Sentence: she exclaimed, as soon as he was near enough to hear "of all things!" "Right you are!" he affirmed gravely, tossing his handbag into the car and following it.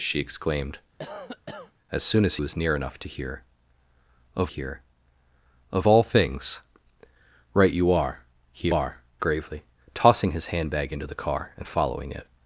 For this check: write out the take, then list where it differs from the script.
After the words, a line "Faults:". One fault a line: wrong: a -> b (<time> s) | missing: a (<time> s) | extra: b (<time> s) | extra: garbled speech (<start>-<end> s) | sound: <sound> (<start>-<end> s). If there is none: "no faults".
she exclaimed, as soon as was near enough to hear "of hear of all things!" "Right you are!" he are gravely, tossing his handbag into the car and following it.
Faults:
sound: cough (1.0-1.7 s)
missing: he (2.4 s)
extra: hear of (4.5 s)
wrong: affirmed -> are (8.7 s)